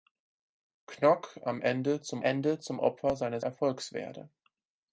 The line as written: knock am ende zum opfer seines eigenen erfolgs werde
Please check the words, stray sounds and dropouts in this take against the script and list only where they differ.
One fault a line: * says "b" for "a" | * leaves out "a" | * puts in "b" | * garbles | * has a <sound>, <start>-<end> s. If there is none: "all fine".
* puts in "ende zum"
* leaves out "eigenen"